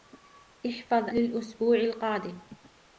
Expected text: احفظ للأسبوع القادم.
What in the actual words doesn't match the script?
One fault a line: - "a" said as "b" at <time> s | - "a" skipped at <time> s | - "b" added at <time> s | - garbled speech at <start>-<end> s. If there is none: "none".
none